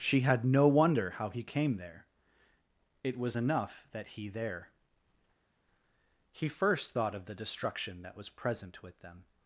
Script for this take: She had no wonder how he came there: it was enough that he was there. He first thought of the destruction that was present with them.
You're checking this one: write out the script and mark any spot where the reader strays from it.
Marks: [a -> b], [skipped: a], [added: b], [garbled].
She had no wonder how he came there: it was enough that he [skipped: was] there. He first thought of the destruction that was present with them.